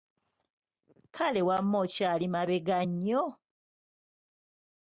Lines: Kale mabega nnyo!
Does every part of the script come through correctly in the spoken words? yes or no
no